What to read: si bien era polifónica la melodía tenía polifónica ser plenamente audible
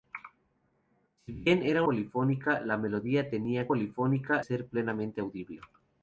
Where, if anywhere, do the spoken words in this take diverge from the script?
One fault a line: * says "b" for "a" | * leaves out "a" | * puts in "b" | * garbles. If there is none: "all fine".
all fine